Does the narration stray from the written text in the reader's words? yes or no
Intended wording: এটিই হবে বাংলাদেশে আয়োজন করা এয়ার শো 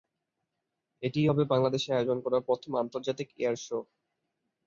yes